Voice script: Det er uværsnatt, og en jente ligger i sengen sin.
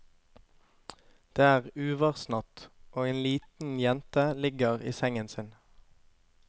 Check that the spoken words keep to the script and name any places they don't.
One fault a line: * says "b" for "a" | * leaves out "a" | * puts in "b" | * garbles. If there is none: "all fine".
* puts in "liten"